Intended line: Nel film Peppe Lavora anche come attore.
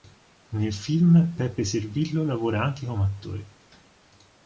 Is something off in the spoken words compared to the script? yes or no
yes